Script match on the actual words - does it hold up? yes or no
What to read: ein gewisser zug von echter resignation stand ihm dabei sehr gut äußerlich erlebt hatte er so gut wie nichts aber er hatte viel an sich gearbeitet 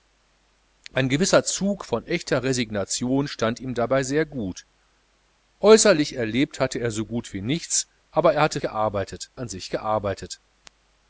no